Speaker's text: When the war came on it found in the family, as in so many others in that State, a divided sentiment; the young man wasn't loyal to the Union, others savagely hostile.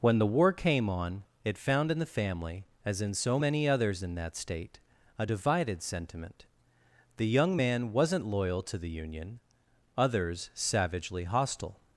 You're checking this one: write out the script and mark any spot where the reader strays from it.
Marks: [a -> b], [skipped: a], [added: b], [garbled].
When the war came on it found in the family, as in so many others in that State, a divided sentiment; the young man wasn't loyal to the Union, others savagely hostile.